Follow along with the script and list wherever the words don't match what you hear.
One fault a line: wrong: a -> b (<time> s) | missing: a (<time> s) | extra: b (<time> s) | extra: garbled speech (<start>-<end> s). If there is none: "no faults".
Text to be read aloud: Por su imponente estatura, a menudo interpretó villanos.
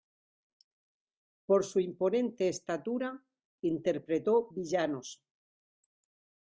missing: a menudo (3.2 s)